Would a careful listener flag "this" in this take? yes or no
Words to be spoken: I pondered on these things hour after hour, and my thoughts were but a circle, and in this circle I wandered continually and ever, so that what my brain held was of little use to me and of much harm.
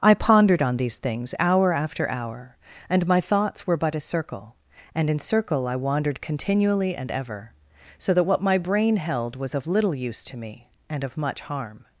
yes